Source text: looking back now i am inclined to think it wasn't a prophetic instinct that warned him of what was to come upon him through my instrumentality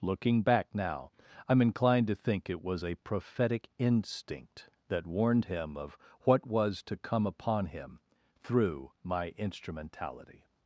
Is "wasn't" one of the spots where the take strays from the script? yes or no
yes